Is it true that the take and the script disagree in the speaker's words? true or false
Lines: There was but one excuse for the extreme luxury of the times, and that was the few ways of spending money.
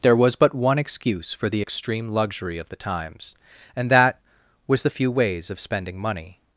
false